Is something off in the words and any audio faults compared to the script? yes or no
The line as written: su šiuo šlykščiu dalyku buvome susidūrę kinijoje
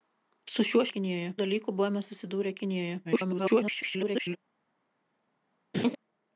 yes